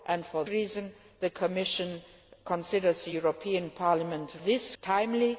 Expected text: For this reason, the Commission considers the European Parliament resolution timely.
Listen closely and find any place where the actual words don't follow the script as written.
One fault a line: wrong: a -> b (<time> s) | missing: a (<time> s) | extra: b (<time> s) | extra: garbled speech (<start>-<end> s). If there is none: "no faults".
missing: this (0.5 s)
wrong: resolution -> this (4.4 s)